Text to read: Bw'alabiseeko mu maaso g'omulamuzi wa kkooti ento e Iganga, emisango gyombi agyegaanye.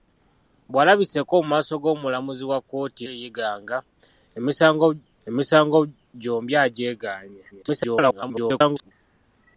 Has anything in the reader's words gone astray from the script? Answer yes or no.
yes